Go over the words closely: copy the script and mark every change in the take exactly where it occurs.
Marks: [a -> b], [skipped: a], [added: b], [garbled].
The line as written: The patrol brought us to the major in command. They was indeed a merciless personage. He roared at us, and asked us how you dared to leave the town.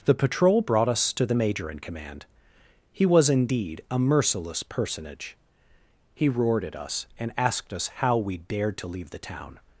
The patrol brought us to the major in command. [They -> He] was indeed a merciless personage. He roared at us, and asked us how [you -> we] dared to leave the town.